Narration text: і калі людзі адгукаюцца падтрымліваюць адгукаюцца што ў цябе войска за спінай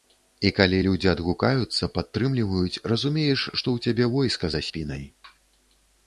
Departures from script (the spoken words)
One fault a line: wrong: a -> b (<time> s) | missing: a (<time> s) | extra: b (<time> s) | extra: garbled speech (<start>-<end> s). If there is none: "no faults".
wrong: адгукаюцца -> разумееш (2.9 s)